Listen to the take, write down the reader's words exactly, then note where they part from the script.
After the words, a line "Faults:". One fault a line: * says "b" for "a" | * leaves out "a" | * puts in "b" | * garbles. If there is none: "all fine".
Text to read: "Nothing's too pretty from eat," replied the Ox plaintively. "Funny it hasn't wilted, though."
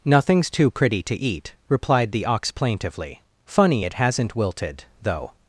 "Nothing's too pretty to eat," replied the Ox plaintively. "Funny it hasn't wilted, though."
Faults:
* says "to" for "from"